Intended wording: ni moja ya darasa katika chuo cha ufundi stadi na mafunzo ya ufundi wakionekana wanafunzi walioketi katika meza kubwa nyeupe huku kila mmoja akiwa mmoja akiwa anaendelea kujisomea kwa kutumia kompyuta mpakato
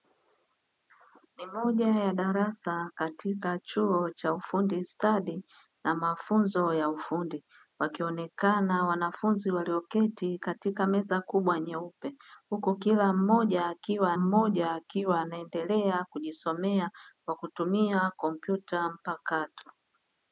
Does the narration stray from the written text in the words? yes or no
no